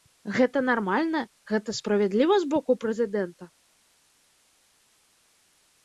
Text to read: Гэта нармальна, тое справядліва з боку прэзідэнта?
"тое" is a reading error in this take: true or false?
true